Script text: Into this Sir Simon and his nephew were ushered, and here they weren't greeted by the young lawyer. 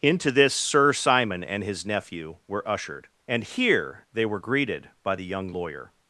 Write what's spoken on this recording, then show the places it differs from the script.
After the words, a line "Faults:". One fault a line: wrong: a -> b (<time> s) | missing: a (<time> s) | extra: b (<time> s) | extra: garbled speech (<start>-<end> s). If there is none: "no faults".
Into this Sir Simon and his nephew were ushered, and here they were greeted by the young lawyer.
Faults:
wrong: weren't -> were (4.2 s)